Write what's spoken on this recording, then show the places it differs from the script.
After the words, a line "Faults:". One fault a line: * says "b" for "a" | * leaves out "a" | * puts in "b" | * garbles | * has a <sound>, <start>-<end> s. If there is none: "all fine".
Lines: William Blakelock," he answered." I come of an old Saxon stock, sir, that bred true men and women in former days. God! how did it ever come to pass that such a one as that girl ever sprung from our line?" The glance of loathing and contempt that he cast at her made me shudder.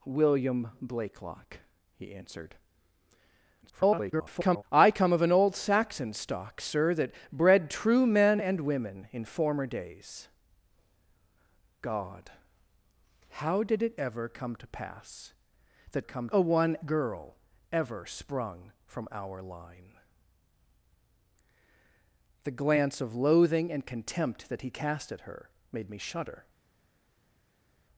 William Blakelock," he answered." [garbled] I come of an old Saxon stock, sir, that bred true men and women in former days. God! how did it ever come to pass that come a one girl ever sprung from our line?" The glance of loathing and contempt that he cast at her made me shudder.
Faults:
* garbles
* says "come" for "such"
* leaves out "as that"